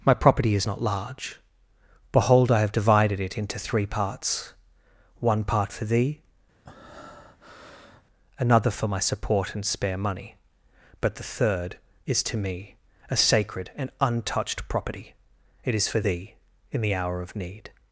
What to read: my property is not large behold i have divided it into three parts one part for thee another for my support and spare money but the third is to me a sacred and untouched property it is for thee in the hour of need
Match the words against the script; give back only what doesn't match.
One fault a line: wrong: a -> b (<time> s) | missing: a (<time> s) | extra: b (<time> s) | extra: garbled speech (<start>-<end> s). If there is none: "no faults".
no faults